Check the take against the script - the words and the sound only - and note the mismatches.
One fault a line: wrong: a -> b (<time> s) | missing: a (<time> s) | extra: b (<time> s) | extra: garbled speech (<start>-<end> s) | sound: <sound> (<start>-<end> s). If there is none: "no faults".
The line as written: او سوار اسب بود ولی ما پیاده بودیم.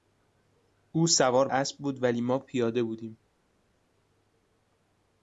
no faults